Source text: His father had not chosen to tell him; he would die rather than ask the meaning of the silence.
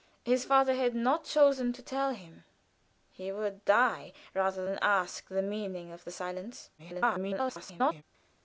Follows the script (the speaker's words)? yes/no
no